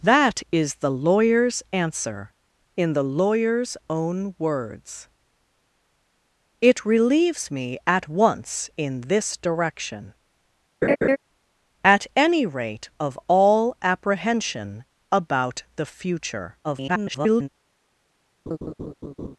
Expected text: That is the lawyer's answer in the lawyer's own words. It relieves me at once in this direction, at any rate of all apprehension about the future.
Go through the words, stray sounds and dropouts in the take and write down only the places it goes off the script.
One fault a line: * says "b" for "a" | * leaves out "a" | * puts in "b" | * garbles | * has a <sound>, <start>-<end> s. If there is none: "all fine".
* has a laugh, 10.8-11.2 s
* garbles
* has a laugh, 18.5-19.4 s